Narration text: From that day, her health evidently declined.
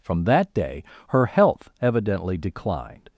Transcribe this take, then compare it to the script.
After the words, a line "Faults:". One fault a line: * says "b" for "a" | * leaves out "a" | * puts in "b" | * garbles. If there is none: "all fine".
From that day, her health evidently declined.
Faults:
all fine